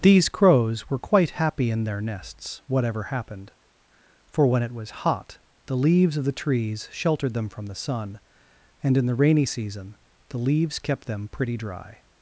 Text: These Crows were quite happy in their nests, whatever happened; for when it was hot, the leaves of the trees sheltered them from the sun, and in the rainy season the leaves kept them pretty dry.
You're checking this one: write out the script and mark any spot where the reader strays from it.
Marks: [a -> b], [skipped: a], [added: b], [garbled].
These Crows were quite happy in their nests, whatever happened; for when it was hot, the leaves of the trees sheltered them from the sun, and in the rainy season the leaves kept them pretty dry.